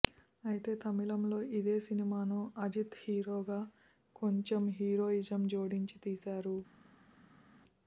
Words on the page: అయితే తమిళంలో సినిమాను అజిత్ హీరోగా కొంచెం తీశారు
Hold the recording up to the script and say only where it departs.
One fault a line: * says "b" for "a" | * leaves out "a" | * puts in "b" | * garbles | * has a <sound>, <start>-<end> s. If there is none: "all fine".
* puts in "ఇదే"
* puts in "హీరోయిజం జోడించి"